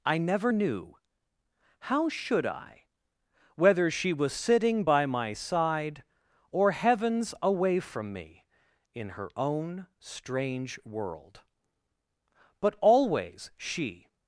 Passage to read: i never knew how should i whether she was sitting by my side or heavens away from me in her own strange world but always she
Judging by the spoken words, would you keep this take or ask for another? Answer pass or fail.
pass